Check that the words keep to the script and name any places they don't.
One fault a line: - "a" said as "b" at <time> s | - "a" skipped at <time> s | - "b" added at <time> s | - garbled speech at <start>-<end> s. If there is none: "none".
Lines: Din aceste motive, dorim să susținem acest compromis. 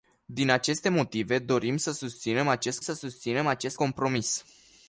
- "să susținem acest" added at 2.8 s